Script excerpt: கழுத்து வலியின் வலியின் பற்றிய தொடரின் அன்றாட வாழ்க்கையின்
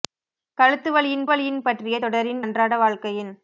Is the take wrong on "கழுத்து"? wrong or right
right